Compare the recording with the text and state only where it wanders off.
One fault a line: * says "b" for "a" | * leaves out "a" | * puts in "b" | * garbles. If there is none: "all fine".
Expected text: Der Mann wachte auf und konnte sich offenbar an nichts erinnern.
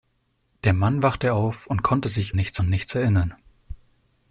* says "nichts" for "offenbar"